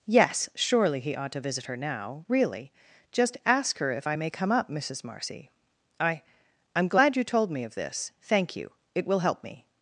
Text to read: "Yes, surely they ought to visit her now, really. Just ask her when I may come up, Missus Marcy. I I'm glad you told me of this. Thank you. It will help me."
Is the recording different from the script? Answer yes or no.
yes